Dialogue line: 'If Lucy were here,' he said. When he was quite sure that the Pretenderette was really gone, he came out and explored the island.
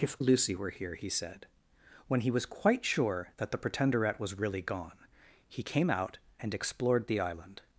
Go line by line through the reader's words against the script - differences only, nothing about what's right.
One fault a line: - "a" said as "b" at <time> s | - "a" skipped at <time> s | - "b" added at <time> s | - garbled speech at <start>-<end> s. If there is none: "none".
none